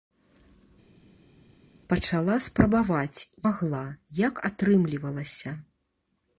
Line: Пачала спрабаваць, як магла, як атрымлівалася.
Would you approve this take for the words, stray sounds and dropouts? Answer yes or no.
no